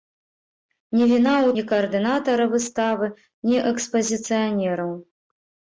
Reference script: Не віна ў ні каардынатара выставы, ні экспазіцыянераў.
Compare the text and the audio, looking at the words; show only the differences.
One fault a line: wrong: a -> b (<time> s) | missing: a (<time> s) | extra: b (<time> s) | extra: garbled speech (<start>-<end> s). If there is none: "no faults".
no faults